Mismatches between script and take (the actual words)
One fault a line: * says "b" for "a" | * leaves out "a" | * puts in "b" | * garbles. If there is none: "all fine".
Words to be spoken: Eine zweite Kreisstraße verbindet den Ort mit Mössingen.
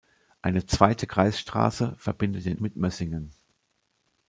* leaves out "Ort"